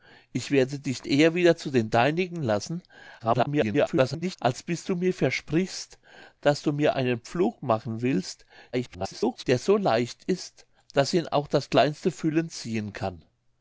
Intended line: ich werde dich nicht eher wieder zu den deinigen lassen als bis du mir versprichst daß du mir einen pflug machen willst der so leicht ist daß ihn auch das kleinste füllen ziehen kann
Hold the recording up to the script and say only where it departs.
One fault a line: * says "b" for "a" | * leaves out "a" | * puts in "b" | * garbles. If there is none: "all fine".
* leaves out "nicht"
* garbles
* garbles